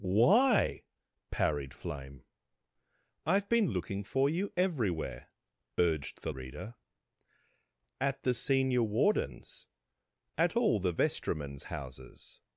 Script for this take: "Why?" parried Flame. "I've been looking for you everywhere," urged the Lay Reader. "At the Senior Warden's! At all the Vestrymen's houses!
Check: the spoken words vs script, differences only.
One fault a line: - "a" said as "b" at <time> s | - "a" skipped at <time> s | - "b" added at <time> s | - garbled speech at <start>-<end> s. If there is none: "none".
- "Lay" skipped at 6.3 s